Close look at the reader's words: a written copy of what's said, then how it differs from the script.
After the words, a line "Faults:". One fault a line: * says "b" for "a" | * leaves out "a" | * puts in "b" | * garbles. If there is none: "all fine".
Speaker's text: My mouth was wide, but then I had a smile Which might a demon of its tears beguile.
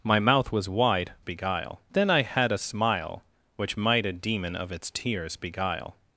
My mouth was wide, beguile then I had a smile Which might a demon of its tears beguile.
Faults:
* says "beguile" for "but"